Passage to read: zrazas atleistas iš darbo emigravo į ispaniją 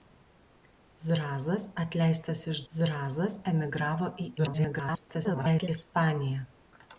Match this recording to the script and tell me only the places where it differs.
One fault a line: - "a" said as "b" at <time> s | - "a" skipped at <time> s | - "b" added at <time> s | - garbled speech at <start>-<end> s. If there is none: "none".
- "darbo" said as "zrazas" at 2.7 s
- garbled speech at 4.4-5.7 s